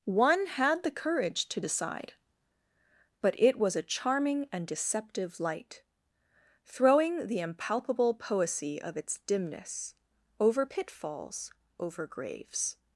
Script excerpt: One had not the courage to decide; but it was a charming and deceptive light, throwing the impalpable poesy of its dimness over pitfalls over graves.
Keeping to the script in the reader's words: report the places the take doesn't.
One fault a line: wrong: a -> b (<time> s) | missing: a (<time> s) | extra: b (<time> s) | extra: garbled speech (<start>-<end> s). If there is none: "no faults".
missing: not (0.8 s)